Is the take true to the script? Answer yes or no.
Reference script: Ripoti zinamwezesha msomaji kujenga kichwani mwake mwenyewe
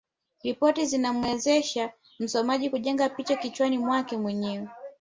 no